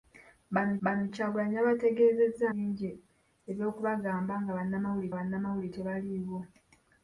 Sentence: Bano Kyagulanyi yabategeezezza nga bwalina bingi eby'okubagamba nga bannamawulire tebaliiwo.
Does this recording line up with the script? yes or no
no